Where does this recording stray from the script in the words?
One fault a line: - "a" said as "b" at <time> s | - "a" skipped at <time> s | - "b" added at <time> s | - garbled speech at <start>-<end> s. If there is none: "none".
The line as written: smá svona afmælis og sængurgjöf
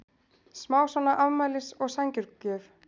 none